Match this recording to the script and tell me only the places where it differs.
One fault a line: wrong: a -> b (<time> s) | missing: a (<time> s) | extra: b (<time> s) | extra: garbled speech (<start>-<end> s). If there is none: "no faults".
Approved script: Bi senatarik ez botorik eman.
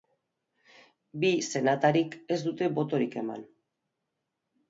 extra: dute (2.4 s)